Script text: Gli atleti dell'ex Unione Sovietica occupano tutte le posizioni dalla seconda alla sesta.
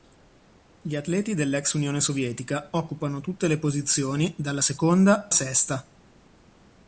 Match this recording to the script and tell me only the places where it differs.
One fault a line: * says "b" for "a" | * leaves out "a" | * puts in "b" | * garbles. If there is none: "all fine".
* leaves out "alla"